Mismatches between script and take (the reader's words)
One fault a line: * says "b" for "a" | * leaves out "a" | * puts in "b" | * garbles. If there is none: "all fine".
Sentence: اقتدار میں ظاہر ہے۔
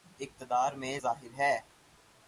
all fine